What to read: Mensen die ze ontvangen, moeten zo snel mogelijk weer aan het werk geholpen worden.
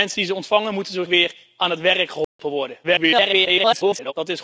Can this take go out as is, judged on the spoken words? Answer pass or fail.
fail